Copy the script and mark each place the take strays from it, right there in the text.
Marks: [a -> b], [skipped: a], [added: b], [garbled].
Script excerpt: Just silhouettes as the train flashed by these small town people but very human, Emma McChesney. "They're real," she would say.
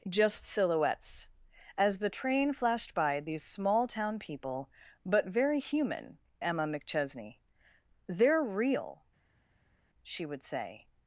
Just silhouettes as the train flashed by these small town people but very human, Emma McChesney. "They're real," she would say.